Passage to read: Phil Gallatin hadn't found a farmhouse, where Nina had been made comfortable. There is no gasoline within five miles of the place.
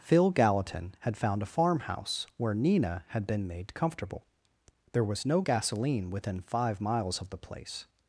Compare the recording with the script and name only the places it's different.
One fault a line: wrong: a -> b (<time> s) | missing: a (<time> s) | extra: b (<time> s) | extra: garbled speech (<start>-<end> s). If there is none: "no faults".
wrong: hadn't -> had (1.0 s)
wrong: is -> was (5.0 s)